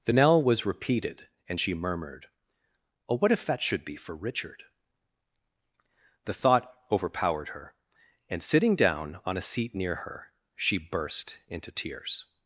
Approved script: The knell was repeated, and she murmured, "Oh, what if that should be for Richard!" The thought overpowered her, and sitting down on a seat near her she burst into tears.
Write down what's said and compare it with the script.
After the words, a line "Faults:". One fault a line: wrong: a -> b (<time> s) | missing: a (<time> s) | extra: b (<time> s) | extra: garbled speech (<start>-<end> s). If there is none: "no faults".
The knell was repeated, and she murmured, "Oh, what if that should be for Richard!" The thought overpowered her, and sitting down on a seat near her she burst into tears.
Faults:
no faults